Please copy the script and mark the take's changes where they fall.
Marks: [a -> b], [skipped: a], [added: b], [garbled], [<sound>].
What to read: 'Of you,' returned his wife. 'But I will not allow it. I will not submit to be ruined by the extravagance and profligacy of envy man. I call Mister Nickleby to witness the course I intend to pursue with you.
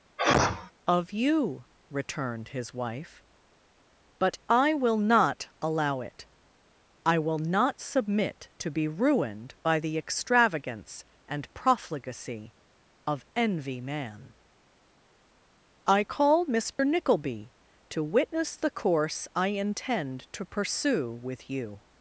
[sneeze] 'Of you,' returned his wife. 'But I will not allow it. I will not submit to be ruined by the extravagance and profligacy of envy man. I call Mister [dropout] Nickleby to witness the course I intend to pursue with you.